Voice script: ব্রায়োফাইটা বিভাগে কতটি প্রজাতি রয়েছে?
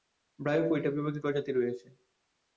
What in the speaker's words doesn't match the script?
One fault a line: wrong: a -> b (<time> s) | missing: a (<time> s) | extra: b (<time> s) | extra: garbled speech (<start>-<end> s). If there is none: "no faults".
missing: কতটি (1.2 s)